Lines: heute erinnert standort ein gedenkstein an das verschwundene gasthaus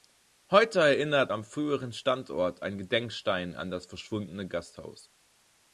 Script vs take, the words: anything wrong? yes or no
yes